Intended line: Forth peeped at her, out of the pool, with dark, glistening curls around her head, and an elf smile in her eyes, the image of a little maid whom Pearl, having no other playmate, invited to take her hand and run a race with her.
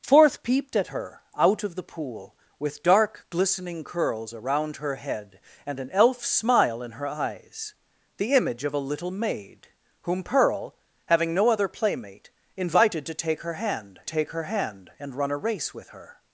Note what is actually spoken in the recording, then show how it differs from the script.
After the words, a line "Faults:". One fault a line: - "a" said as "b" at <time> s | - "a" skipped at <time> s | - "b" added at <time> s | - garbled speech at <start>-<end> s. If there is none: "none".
Forth peeped at her, out of the pool, with dark, glistening curls around her head, and an elf smile in her eyes, the image of a little maid whom Pearl, having no other playmate, invited to take her hand take her hand and run a race with her.
Faults:
- "take her hand" added at 14.0 s